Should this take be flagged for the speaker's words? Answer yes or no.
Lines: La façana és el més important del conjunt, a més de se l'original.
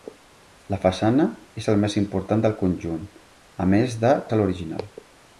no